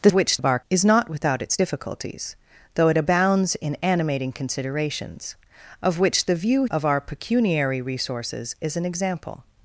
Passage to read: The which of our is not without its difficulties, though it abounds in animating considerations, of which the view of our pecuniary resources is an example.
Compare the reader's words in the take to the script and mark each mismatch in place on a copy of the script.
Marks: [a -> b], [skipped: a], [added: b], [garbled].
The which of our is not without its difficulties, though it abounds in animating considerations, of which the view of our pecuniary resources is an example.